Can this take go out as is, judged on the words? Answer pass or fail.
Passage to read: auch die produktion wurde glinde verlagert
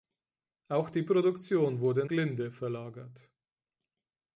pass